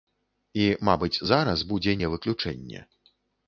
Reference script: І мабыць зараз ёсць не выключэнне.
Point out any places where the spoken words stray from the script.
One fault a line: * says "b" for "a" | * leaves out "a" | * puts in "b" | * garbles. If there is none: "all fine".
* says "будзе" for "ёсць"